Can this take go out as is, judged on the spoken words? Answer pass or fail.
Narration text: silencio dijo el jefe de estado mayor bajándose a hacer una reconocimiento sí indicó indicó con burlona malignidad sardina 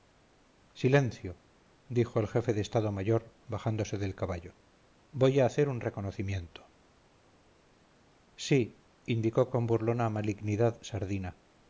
fail